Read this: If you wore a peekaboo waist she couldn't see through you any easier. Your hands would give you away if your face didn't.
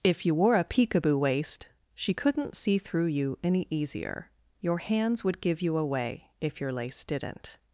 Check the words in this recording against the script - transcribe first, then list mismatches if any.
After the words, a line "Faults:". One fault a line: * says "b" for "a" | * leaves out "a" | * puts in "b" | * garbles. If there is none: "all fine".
If you wore a peekaboo waist she couldn't see through you any easier. Your hands would give you away if your lace didn't.
Faults:
* says "lace" for "face"